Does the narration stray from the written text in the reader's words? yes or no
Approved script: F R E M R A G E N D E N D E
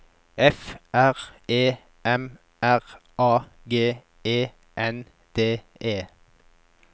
yes